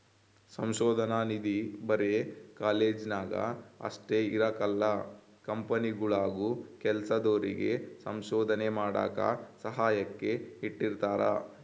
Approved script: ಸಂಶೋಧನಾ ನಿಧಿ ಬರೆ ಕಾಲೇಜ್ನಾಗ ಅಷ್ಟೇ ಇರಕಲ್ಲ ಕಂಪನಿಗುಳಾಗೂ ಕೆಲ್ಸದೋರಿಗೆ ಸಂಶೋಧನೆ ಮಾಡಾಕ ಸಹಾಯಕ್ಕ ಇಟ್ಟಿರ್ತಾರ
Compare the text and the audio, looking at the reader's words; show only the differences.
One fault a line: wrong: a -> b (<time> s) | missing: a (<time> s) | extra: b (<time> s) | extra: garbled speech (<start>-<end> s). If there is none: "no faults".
no faults